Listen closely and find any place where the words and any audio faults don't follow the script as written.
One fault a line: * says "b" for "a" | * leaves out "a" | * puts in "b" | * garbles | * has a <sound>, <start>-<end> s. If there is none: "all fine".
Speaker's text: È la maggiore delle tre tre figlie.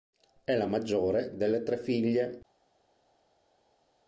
* leaves out "tre"